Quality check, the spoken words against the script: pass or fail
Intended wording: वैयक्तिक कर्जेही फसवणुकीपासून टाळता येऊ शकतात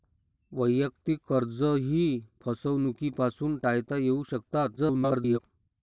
fail